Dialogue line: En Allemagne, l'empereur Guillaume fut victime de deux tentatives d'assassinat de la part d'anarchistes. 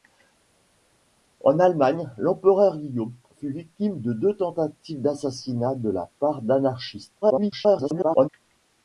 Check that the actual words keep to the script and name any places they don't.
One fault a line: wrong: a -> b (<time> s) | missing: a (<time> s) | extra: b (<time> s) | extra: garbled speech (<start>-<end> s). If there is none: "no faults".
extra: garbled speech (7.2-8.3 s)